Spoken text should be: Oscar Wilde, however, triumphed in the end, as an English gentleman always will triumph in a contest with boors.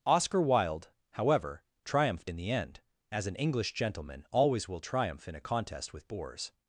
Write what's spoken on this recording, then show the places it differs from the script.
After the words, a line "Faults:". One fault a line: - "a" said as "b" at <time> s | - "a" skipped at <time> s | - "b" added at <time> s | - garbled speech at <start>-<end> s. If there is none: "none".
Oscar Wilde, however, triumphed in the end, as an English gentleman always will triumph in a contest with boors.
Faults:
none